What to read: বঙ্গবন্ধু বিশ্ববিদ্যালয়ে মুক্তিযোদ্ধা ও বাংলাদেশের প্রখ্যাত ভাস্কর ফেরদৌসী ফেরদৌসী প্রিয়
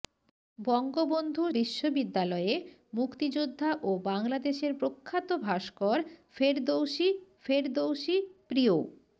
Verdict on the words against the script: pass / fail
pass